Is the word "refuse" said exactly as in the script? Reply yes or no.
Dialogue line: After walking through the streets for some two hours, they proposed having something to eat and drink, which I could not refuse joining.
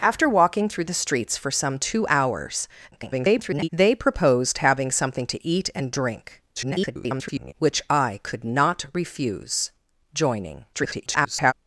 yes